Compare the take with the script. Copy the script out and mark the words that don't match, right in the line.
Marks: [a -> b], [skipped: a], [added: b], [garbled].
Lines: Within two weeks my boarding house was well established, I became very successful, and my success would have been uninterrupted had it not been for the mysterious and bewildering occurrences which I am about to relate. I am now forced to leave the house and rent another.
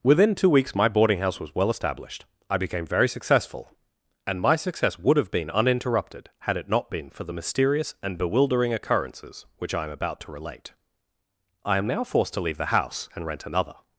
Within two weeks my boarding house was well established, I became very successful, and my success would have been uninterrupted had it not been for the mysterious and bewildering occurrences which I am about to relate. I am now forced to leave the house and rent another.